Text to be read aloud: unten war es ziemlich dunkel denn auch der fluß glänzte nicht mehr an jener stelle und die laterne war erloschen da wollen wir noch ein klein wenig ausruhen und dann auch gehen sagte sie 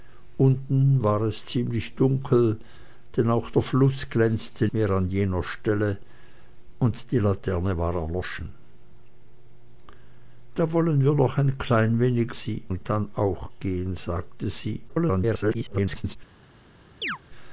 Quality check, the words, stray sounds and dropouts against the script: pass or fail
fail